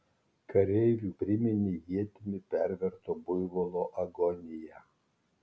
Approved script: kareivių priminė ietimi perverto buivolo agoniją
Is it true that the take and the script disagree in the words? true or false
false